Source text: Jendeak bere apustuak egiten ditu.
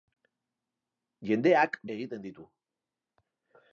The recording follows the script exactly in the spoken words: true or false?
false